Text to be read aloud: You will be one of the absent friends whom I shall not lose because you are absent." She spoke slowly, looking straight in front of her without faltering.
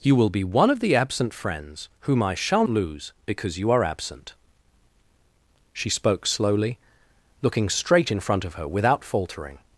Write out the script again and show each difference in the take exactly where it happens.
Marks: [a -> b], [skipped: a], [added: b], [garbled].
You will be one of the absent friends whom I shall [skipped: not] lose because you are absent." She spoke slowly, looking straight in front of her without faltering.